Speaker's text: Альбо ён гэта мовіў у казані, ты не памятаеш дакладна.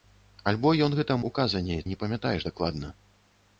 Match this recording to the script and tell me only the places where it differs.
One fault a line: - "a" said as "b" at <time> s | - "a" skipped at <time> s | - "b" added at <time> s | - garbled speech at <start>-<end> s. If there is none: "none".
- "мовіў" skipped at 1.2 s
- "ты" skipped at 1.8 s